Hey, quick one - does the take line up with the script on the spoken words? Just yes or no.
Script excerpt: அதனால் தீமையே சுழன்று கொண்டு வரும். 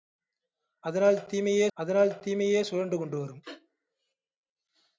no